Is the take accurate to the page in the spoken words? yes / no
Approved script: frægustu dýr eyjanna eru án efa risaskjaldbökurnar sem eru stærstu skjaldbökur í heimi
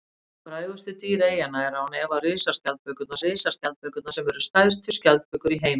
no